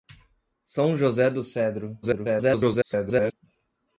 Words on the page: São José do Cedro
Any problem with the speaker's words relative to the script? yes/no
yes